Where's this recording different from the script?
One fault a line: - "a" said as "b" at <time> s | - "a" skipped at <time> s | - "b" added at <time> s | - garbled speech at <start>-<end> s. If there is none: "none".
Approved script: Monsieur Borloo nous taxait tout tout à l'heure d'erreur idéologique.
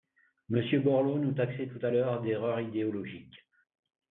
- "tout" skipped at 1.9 s